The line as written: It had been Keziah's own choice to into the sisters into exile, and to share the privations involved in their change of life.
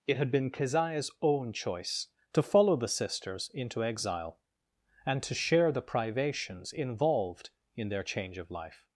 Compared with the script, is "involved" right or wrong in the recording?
right